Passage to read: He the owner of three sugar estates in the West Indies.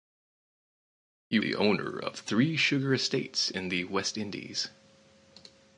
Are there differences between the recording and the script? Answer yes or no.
no